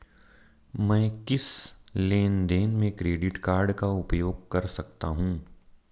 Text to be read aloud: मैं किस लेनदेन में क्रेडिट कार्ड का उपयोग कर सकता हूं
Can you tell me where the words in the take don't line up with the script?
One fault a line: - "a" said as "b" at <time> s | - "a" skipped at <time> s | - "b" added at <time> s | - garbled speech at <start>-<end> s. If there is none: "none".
none